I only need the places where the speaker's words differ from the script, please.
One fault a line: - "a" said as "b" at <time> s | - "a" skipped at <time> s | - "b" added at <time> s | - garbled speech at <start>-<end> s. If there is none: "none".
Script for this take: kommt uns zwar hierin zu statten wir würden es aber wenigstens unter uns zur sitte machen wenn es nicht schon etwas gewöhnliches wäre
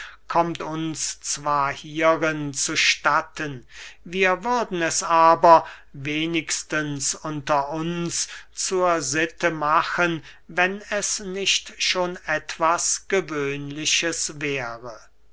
none